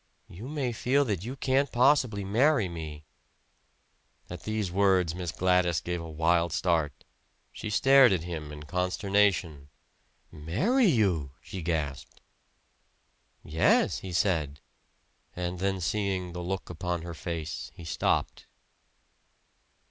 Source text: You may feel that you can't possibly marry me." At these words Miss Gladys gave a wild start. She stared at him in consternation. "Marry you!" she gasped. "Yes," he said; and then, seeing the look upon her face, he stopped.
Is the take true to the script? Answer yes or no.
yes